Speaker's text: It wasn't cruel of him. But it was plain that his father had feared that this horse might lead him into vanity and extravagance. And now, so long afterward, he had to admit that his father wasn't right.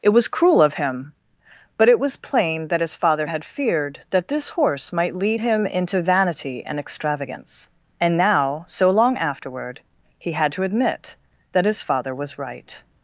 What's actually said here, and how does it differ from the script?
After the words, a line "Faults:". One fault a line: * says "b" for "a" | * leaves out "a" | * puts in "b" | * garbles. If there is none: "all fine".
It was cruel of him. But it was plain that his father had feared that this horse might lead him into vanity and extravagance. And now, so long afterward, he had to admit that his father was right.
Faults:
* says "was" for "wasn't"
* says "was" for "wasn't"